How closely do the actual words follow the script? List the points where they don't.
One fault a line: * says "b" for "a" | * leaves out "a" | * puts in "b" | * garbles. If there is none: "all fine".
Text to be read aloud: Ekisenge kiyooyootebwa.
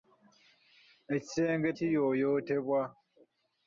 all fine